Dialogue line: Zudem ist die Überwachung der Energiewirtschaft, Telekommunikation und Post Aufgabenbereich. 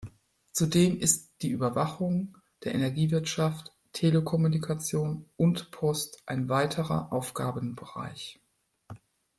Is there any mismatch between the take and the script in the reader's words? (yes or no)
yes